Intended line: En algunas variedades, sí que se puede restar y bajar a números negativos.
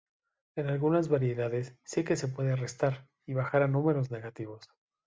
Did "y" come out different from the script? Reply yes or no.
no